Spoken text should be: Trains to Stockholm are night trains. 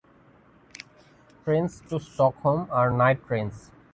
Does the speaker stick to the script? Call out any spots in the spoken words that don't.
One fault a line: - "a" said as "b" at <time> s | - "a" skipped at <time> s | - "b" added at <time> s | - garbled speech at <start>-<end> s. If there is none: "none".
none